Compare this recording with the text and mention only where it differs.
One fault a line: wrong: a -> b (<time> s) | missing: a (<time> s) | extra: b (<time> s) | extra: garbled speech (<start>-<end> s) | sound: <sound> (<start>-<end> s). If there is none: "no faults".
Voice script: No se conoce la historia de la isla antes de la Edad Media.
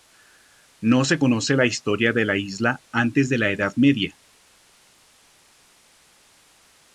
no faults